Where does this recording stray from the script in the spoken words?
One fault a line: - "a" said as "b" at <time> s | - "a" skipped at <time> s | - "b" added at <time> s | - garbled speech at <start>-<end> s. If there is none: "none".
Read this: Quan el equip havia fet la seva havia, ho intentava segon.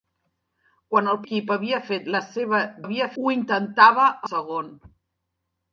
none